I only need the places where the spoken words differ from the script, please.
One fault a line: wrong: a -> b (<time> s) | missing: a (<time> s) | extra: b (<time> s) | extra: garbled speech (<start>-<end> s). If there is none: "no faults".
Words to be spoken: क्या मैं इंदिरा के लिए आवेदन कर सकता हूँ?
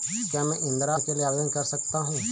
no faults